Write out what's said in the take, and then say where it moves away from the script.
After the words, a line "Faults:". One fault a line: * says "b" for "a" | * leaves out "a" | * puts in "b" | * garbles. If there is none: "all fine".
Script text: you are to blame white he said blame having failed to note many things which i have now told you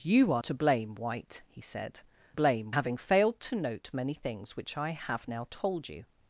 you are to blame white he said blame having failed to note many things which i have now told you
Faults:
all fine